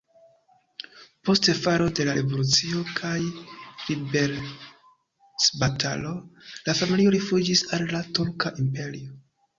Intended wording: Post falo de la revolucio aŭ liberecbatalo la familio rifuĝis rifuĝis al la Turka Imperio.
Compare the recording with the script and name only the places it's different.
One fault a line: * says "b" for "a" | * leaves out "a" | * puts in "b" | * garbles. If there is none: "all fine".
* says "kaj" for "aŭ"
* leaves out "rifuĝis"